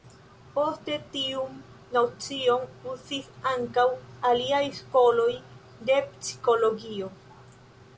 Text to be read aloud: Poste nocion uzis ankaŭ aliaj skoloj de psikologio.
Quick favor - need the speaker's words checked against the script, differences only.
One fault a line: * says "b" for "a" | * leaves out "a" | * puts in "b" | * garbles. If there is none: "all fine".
* puts in "tiun"